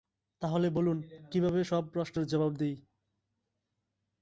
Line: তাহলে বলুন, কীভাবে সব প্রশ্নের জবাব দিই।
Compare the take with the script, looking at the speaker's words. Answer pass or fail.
pass